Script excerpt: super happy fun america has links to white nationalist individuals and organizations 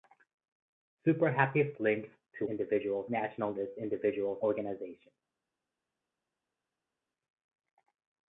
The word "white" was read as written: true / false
false